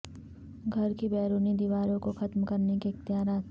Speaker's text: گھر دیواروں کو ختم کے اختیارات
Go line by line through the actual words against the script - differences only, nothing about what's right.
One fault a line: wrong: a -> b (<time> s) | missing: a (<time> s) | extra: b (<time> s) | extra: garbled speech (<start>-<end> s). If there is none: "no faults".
extra: کی بیرونی (1.0 s)
extra: کرنے (2.4 s)